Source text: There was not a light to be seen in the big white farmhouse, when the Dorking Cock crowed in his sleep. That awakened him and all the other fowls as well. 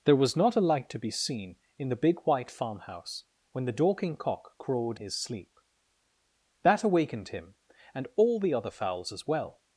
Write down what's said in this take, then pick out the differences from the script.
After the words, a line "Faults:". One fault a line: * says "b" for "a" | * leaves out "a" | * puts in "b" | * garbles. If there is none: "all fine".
There was not a light to be seen in the big white farmhouse, when the Dorking Cock crowed his sleep. That awakened him and all the other fowls as well.
Faults:
* leaves out "in"